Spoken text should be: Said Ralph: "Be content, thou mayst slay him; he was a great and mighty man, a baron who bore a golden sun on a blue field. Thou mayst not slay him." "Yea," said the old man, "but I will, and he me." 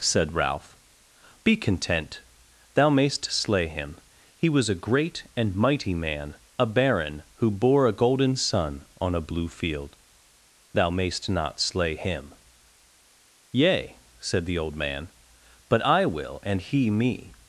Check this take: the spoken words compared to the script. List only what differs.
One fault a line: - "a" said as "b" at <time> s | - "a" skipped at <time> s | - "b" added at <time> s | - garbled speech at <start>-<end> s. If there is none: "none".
none